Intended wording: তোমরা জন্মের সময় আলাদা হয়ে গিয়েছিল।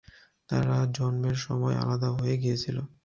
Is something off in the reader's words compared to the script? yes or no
yes